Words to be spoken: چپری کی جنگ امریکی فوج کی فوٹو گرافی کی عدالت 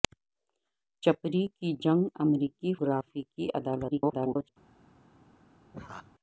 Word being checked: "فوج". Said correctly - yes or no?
no